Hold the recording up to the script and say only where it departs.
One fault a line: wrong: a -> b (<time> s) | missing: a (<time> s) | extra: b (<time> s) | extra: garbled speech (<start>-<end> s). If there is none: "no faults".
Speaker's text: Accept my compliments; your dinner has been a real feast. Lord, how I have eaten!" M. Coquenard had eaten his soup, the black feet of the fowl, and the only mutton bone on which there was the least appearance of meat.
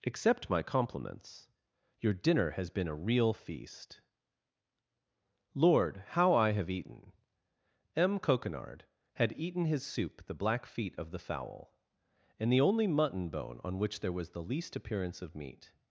no faults